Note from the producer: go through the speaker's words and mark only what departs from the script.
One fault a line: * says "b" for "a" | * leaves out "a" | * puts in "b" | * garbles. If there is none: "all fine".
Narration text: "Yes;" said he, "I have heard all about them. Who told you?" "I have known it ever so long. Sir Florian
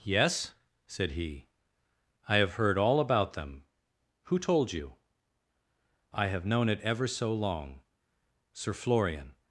all fine